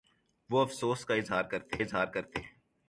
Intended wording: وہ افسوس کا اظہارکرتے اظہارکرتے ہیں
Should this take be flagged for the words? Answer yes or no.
no